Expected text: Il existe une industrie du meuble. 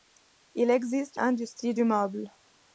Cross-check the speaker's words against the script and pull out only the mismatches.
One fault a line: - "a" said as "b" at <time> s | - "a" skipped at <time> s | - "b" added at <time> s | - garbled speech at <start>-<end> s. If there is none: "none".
- "une" skipped at 1.2 s